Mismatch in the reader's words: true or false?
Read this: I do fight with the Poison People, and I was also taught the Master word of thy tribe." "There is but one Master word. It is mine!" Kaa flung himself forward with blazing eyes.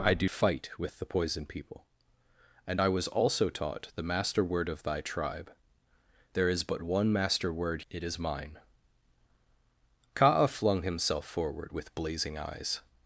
false